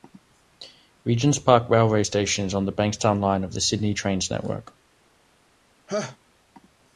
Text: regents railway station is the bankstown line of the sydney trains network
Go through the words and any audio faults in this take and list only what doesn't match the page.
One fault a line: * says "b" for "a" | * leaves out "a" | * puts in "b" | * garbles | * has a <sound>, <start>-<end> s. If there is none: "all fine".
* puts in "park"
* puts in "on"
* has a laugh, 5.9-6.2 s